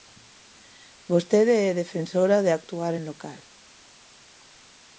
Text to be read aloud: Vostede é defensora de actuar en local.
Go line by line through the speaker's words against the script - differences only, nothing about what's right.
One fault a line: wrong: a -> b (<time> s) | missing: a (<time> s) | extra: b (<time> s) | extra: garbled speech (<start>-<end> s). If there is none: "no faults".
no faults